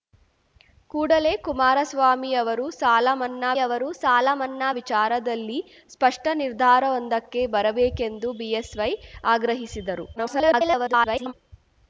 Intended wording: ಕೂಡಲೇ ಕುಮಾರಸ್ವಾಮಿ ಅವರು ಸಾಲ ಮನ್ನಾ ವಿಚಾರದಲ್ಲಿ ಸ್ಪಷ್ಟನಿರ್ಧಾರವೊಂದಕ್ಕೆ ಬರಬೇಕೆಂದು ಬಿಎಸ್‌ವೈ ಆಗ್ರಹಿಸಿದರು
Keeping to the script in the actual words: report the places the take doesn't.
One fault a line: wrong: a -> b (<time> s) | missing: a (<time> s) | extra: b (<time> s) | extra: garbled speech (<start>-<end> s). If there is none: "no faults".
extra: ಅವರು ಸಾಲ ಮನ್ನಾ (3.6 s)
extra: garbled speech (10.2-11.3 s)